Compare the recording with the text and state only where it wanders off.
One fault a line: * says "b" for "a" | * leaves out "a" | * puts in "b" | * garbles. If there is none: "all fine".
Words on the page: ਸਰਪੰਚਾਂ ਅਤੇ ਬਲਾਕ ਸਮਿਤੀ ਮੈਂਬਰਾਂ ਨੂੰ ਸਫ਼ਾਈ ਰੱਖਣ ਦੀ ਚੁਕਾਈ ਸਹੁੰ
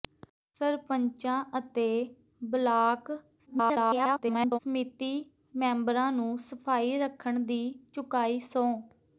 * garbles